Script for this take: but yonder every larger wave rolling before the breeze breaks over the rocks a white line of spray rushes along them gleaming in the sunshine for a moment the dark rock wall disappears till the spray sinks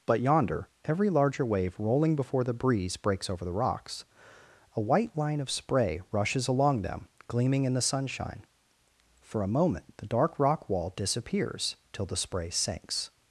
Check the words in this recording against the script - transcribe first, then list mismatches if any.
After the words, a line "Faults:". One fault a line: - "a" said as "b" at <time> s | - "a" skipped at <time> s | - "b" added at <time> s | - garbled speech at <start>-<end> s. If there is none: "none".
but yonder every larger wave rolling before the breeze breaks over the rocks a white line of spray rushes along them gleaming in the sunshine for a moment the dark rock wall disappears till the spray sinks
Faults:
none